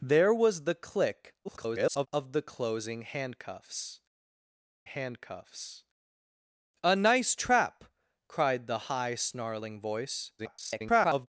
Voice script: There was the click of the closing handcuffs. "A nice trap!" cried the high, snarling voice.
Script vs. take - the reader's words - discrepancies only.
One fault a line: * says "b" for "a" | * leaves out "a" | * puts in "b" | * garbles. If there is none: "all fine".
* garbles
* puts in "handcuffs"
* garbles